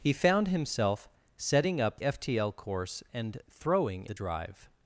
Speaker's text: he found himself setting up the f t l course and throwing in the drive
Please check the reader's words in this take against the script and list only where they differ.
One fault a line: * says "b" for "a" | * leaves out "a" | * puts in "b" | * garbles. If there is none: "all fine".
* leaves out "the"
* leaves out "in"